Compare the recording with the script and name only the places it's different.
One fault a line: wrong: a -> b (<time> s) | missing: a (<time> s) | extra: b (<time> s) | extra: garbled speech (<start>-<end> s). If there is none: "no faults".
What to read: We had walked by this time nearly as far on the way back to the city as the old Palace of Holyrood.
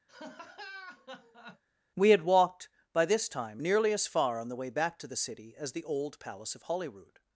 no faults